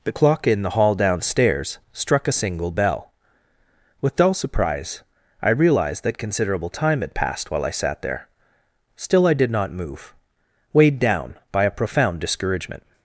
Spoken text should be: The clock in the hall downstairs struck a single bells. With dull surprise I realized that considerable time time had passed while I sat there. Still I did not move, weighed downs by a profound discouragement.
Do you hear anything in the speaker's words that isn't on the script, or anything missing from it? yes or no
yes